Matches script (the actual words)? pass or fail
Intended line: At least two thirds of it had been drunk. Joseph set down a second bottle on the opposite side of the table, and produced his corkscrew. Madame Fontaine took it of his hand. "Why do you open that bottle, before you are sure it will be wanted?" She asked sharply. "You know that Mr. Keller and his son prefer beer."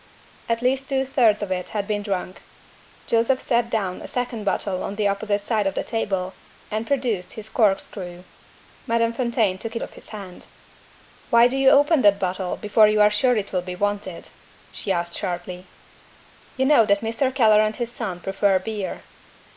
pass